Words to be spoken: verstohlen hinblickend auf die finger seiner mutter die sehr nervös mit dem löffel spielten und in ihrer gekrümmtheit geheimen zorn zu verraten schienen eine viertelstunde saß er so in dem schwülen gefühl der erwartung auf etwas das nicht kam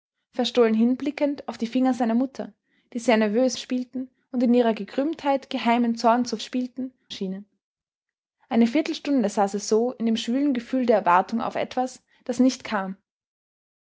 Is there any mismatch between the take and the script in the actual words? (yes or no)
yes